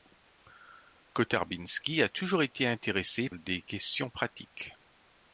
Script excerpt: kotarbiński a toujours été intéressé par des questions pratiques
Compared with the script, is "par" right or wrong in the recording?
wrong